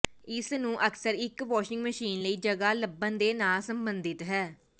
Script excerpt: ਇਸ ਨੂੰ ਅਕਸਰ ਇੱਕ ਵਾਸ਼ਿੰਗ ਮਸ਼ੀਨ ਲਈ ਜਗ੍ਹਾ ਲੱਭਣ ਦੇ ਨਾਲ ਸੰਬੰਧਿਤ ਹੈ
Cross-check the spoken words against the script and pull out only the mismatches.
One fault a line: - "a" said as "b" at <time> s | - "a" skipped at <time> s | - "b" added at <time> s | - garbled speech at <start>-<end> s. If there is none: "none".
none